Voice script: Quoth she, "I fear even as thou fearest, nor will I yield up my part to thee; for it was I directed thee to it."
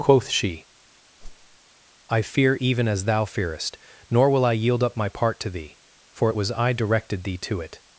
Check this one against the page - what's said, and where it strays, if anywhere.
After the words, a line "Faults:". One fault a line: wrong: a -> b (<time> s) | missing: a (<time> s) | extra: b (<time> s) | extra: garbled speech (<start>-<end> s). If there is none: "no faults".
Quoth she, "I fear even as thou fearest, nor will I yield up my part to thee; for it was I directed thee to it."
Faults:
no faults